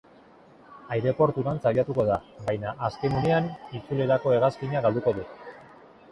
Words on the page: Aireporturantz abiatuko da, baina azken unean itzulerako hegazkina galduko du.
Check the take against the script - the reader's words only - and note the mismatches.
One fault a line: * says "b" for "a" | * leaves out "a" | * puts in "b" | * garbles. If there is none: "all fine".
all fine